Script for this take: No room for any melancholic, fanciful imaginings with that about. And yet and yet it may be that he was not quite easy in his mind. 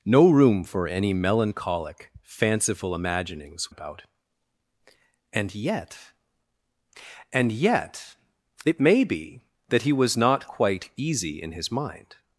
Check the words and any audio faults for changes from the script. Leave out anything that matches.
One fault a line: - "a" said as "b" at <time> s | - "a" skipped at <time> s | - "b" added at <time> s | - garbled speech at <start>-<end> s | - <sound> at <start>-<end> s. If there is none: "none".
- "with that" skipped at 3.7 s